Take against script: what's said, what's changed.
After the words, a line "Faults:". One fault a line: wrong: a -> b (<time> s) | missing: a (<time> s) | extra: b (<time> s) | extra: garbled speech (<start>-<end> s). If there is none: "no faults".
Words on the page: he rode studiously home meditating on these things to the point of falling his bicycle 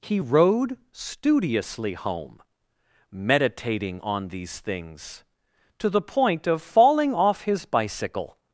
he rode studiously home meditating on these things to the point of falling off his bicycle
Faults:
extra: off (7.1 s)